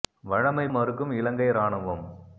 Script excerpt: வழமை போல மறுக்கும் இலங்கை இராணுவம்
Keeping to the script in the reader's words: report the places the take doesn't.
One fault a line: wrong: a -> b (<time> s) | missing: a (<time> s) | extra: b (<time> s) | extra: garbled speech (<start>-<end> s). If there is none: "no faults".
missing: போல (0.7 s)